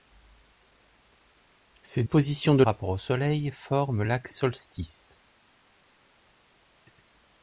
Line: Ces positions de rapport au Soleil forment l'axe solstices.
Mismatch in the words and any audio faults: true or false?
false